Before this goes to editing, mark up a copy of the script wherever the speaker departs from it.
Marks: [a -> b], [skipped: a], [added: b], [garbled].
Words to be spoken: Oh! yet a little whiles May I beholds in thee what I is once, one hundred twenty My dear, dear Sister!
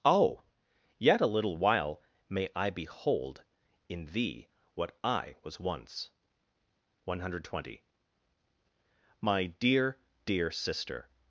Oh! yet a little [whiles -> while] May I [beholds -> behold] in thee what I [is -> was] once, one hundred twenty My dear, dear Sister!